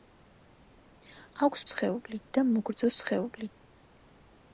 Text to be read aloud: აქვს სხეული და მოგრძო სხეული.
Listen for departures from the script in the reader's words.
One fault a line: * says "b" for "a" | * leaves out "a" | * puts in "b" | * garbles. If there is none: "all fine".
all fine